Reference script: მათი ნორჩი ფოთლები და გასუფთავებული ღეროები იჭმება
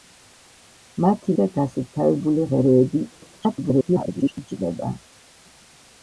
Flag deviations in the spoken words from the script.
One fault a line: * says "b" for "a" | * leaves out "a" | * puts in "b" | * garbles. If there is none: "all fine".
* leaves out "ნორჩი ფოთლები"
* garbles